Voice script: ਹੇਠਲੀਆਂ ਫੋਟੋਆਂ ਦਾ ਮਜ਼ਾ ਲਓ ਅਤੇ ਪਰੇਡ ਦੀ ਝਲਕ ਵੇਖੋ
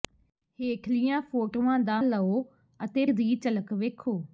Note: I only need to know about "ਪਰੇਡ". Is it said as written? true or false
false